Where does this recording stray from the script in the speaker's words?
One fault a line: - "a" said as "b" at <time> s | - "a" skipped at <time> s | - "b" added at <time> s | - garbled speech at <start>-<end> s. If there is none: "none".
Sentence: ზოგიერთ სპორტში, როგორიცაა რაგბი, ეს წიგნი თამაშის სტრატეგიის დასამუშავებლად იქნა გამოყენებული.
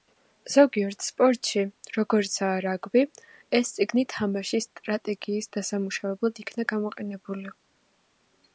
none